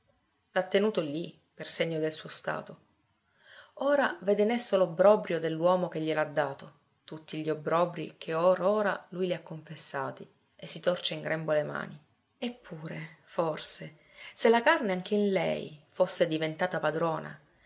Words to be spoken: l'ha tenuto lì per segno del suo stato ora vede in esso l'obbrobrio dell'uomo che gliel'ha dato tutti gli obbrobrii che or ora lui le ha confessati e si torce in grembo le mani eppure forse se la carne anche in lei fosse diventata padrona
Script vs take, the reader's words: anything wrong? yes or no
no